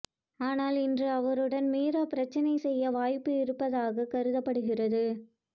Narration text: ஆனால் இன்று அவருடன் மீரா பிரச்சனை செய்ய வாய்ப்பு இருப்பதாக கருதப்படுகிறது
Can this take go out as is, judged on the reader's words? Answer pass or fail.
pass